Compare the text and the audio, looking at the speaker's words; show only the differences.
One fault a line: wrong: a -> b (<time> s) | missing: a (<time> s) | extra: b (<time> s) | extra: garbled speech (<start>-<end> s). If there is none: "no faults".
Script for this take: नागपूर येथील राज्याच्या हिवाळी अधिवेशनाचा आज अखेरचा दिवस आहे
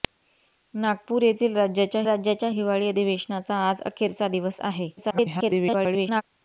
extra: राज्याच्या (2.1 s)
extra: garbled speech (5.0-6.2 s)